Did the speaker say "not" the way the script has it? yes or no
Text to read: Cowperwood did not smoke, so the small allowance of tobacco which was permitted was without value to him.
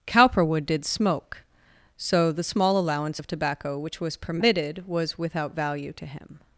no